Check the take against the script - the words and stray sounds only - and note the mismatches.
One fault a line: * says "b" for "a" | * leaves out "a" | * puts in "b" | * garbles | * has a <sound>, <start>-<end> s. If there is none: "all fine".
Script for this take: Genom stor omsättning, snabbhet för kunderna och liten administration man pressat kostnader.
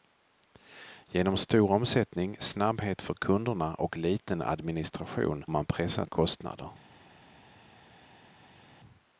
all fine